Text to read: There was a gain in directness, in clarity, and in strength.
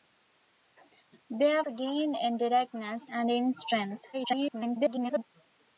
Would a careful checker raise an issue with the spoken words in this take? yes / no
yes